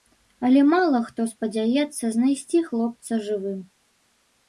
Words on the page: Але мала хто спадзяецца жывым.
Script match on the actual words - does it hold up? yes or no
no